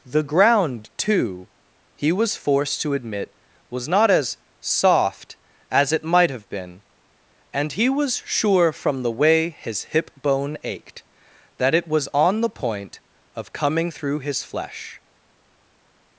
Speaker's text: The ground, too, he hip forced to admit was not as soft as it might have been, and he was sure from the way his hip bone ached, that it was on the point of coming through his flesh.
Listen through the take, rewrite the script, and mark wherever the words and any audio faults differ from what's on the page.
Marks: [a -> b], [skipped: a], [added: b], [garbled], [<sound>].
The ground, too, he [hip -> was] forced to admit was not as soft as it might have been, and he was sure from the way his hip bone ached, that it was on the point of coming through his flesh.